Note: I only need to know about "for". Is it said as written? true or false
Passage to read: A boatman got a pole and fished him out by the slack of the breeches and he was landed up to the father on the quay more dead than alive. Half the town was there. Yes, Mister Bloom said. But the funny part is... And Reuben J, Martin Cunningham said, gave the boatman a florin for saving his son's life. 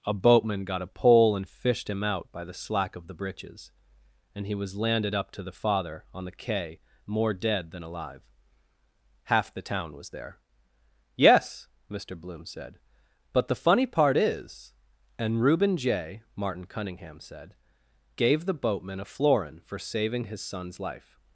true